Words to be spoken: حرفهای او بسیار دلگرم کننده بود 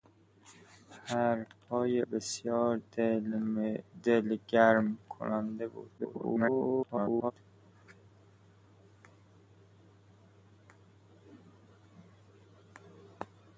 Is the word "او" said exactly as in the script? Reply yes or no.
no